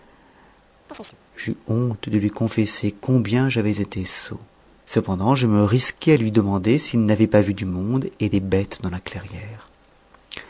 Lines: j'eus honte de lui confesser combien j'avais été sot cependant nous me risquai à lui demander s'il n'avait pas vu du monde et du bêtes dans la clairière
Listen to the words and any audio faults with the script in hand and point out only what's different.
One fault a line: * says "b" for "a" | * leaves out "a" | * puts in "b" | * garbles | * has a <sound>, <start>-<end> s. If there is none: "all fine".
* has a chirp, 0.9-1.2 s
* says "je" for "nous"
* says "des" for "du"